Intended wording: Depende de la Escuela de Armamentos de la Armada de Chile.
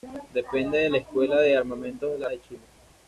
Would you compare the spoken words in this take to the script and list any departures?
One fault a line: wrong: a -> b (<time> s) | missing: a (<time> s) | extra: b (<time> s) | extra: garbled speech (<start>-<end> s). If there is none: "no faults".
missing: Armada (2.2 s)